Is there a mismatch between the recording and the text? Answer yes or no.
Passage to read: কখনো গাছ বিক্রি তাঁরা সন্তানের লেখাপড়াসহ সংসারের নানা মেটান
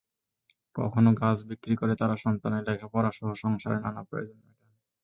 yes